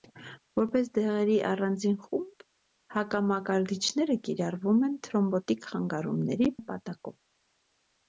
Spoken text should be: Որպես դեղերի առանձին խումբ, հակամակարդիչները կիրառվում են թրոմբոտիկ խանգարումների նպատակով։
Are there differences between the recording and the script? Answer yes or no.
no